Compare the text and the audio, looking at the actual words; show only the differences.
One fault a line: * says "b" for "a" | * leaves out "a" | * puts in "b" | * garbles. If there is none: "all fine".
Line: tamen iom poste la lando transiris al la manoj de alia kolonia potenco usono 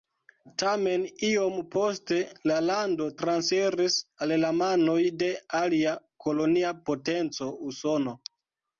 all fine